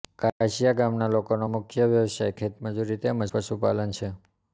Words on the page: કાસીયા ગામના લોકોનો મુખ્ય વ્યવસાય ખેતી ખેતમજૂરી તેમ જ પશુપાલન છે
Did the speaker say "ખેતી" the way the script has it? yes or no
no